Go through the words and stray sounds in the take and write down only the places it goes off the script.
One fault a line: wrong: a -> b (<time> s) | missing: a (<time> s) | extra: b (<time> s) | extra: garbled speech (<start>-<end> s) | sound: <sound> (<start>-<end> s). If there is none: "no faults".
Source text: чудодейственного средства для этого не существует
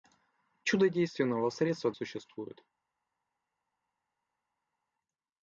missing: для этого не (1.9 s)